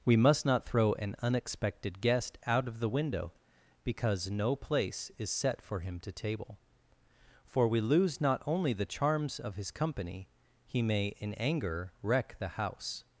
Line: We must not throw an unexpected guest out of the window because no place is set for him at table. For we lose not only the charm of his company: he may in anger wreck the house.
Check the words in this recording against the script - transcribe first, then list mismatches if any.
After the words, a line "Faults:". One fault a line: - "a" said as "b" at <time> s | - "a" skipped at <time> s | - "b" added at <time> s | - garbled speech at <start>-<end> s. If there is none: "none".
We must not throw an unexpected guest out of the window because no place is set for him to table. For we lose not only the charms of his company: he may in anger wreck the house.
Faults:
- "at" said as "to" at 6.0 s
- "charm" said as "charms" at 8.8 s